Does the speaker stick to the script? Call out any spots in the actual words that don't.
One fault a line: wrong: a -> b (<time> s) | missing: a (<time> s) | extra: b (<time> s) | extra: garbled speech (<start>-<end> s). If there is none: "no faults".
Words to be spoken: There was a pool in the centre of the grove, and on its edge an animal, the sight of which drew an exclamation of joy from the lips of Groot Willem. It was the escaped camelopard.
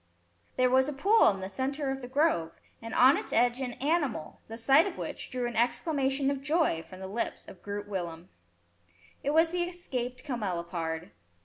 no faults